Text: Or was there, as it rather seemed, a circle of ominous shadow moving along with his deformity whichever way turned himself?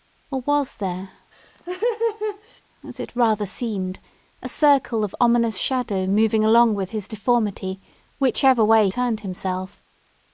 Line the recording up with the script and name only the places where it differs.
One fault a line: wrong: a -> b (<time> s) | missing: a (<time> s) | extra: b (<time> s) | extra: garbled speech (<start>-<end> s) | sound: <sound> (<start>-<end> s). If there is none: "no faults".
sound: laugh (1.3-2.6 s)